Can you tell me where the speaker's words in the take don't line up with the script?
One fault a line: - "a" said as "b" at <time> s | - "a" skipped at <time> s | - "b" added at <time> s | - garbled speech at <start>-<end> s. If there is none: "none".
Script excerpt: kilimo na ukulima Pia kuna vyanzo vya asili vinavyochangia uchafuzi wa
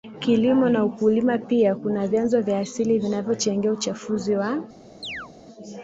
none